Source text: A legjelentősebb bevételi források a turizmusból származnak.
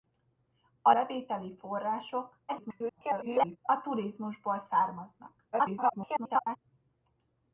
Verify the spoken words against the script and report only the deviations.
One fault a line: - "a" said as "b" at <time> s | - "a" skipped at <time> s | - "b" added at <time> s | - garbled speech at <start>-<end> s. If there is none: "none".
- "legjelentősebb" skipped at 0.9 s
- garbled speech at 2.5-3.6 s
- garbled speech at 5.5-6.6 s